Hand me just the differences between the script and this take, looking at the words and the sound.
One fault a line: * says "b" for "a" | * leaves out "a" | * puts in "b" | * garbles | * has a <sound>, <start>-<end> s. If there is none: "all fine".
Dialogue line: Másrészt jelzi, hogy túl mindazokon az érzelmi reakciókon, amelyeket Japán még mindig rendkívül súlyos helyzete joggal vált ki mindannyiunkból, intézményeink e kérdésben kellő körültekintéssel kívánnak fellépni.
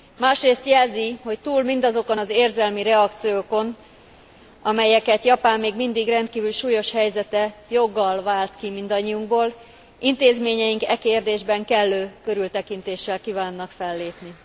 all fine